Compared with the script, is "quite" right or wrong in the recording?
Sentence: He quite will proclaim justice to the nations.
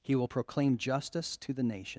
wrong